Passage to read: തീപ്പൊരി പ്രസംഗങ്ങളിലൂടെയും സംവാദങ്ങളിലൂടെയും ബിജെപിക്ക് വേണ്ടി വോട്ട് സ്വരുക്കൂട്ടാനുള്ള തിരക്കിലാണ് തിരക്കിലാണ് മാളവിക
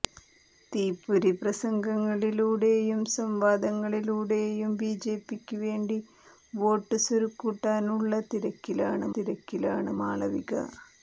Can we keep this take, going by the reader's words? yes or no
yes